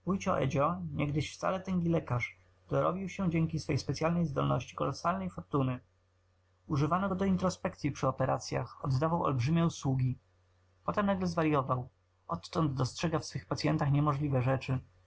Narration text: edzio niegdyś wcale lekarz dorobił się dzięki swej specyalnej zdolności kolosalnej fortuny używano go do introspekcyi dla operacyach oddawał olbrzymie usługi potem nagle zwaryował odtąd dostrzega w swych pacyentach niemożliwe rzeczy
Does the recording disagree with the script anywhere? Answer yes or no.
yes